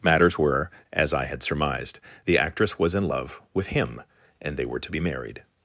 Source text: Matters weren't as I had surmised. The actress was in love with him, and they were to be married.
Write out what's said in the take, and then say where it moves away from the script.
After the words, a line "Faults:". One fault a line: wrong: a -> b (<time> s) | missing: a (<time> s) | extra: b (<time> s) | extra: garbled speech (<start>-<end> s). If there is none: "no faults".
Matters were as I had surmised. The actress was in love with him, and they were to be married.
Faults:
wrong: weren't -> were (0.4 s)